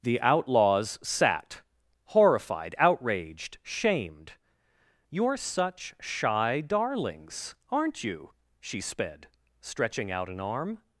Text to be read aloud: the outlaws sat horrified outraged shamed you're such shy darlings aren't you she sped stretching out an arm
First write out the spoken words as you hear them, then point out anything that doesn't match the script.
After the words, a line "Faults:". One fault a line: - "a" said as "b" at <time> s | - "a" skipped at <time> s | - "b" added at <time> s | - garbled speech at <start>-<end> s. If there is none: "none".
the outlaws sat horrified outraged shamed you're such shy darlings aren't you she sped stretching out an arm
Faults:
none